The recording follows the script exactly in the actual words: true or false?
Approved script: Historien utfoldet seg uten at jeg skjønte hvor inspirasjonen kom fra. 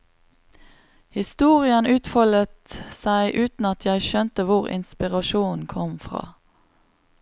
true